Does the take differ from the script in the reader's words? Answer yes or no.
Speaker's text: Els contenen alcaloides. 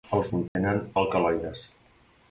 no